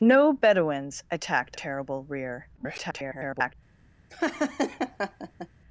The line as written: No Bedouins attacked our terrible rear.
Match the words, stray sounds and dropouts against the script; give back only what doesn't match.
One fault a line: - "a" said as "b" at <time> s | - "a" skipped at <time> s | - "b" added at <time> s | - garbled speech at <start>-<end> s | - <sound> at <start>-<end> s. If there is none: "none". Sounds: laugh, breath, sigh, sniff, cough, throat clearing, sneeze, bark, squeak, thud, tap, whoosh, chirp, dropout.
- "our" skipped at 1.6 s
- garbled speech at 2.6-3.5 s
- laugh at 4.1-5.5 s